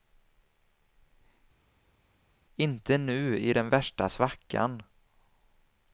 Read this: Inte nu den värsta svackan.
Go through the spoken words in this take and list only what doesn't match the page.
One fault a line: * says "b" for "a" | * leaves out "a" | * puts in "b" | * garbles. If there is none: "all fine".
* puts in "i"